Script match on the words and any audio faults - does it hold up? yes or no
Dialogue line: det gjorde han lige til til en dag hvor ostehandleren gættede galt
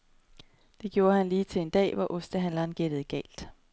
no